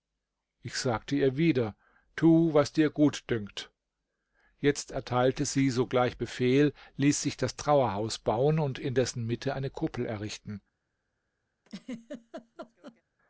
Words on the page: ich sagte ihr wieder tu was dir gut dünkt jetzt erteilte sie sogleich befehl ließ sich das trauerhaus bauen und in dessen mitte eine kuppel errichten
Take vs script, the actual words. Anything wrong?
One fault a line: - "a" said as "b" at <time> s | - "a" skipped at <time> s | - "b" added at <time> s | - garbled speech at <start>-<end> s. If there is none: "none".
none